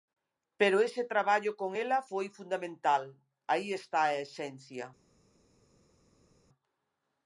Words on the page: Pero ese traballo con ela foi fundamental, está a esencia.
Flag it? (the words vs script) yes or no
yes